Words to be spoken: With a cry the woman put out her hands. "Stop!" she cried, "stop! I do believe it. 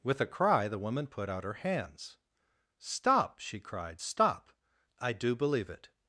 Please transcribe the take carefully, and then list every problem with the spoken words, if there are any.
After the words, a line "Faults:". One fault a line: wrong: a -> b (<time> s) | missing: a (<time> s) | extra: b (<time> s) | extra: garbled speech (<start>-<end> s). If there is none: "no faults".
With a cry the woman put out her hands. "Stop!" she cried, "stop! I do believe it.
Faults:
no faults